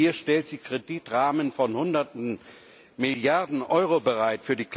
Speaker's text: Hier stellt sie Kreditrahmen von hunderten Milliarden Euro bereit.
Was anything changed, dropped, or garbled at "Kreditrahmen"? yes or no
no